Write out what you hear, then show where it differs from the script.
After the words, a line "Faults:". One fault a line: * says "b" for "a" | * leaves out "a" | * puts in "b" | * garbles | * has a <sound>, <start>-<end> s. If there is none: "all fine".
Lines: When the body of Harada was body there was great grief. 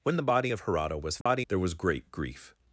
When the body of Harada was body there was great grief.
Faults:
* has a dropout, 1.2-1.3 s